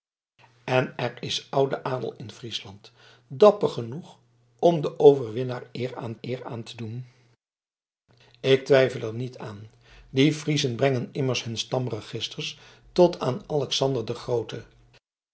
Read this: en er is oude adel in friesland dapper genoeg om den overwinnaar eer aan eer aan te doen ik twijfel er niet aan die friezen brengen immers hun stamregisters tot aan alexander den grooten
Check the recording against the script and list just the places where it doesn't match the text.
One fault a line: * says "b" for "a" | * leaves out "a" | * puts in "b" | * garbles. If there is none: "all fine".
all fine